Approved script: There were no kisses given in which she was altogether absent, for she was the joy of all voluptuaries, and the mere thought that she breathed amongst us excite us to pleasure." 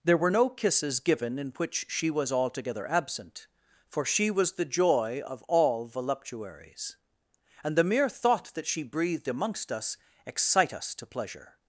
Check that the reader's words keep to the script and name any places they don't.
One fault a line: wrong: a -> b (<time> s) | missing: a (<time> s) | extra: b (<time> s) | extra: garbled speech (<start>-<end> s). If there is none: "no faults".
no faults